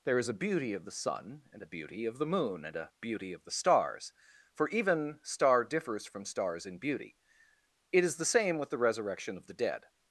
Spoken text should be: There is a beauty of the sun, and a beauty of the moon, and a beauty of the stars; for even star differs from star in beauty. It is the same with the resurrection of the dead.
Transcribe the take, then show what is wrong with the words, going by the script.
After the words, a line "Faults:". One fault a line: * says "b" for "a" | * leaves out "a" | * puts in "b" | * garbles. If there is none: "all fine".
There is a beauty of the sun, and a beauty of the moon, and a beauty of the stars; for even star differs from stars in beauty. It is the same with the resurrection of the dead.
Faults:
* says "stars" for "star"